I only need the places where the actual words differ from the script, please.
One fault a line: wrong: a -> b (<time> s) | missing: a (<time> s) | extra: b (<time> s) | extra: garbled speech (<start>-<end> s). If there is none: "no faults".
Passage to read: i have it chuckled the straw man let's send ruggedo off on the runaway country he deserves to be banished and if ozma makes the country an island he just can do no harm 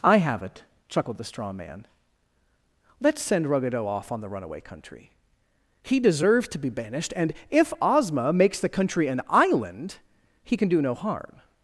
missing: just (10.6 s)